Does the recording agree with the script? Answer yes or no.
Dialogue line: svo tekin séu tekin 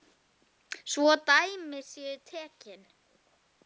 no